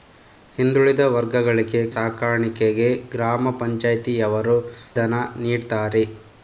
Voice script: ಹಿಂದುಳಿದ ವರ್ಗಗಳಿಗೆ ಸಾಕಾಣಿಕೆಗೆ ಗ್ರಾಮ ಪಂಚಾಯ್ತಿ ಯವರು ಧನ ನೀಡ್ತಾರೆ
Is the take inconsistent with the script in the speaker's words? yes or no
no